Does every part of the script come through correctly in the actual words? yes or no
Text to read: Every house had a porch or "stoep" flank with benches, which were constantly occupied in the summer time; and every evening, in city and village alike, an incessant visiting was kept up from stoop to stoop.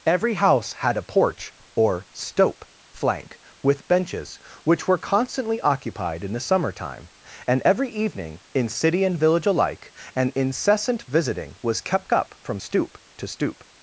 yes